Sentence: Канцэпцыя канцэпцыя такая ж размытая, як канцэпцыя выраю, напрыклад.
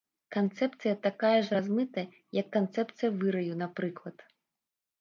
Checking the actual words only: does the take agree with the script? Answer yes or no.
no